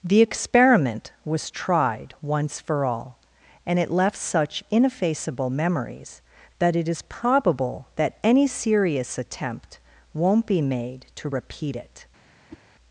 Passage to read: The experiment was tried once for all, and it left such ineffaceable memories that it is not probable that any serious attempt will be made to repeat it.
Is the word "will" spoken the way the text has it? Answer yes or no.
no